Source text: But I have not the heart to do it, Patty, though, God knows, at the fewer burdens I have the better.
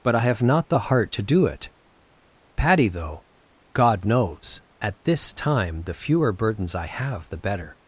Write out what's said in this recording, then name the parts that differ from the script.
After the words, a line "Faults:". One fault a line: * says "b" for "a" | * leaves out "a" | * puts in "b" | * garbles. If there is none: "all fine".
But I have not the heart to do it, Patty, though, God knows, at this time the fewer burdens I have the better.
Faults:
* puts in "this time"